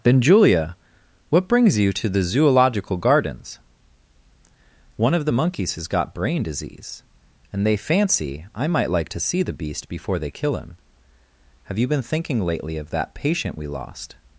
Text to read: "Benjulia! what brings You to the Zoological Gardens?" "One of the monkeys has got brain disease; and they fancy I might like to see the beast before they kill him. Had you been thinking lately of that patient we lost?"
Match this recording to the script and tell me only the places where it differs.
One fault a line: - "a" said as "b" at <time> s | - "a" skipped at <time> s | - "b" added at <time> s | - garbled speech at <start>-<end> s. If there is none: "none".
- "Had" said as "Have" at 11.6 s